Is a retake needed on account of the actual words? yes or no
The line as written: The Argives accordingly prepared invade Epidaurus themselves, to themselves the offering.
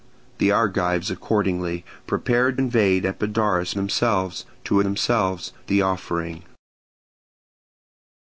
no